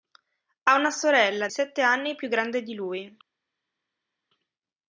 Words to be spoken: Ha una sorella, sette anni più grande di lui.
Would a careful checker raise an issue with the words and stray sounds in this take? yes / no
no